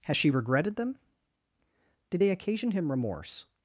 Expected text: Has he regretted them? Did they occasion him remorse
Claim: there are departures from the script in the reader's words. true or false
true